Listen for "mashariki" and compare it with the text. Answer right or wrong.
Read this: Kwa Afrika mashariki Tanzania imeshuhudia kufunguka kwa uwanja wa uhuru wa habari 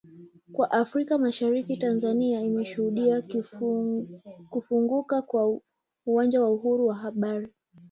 right